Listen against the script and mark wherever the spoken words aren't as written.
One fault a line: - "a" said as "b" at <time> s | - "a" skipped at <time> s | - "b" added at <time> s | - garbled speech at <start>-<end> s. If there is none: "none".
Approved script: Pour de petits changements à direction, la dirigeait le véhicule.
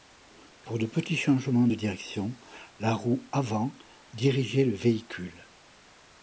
- "à" said as "de" at 1.6 s
- "roue avant" added at 2.9 s